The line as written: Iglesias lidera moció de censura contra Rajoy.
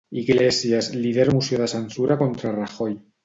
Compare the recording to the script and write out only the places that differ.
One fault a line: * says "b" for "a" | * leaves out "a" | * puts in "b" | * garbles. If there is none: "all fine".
all fine